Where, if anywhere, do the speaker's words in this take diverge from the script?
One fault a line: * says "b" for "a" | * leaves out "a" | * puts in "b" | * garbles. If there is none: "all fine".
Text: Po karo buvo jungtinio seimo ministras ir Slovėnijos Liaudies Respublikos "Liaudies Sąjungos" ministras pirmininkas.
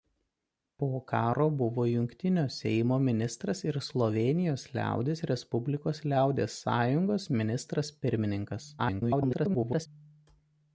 * garbles